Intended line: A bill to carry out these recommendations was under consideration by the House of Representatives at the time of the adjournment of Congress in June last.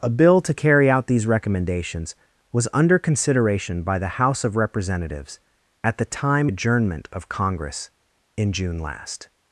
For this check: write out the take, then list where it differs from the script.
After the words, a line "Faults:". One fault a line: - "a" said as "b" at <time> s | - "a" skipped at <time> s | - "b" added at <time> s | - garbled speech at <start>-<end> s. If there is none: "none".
A bill to carry out these recommendations was under consideration by the House of Representatives at the time adjournment of Congress in June last.
Faults:
- "of the" skipped at 6.5 s